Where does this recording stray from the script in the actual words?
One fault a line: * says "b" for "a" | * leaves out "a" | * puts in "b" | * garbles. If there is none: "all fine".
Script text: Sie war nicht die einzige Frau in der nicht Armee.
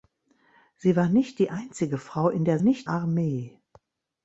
all fine